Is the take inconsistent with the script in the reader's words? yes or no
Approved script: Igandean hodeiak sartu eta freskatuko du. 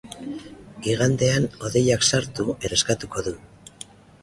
yes